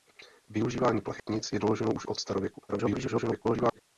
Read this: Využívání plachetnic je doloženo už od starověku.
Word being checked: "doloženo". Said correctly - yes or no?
yes